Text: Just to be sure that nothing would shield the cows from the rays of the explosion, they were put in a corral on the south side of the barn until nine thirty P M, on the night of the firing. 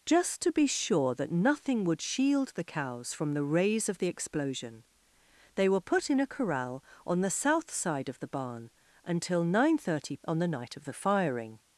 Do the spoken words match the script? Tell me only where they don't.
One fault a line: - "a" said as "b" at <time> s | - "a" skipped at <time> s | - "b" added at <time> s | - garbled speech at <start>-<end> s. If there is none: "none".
- "P M" skipped at 10.2 s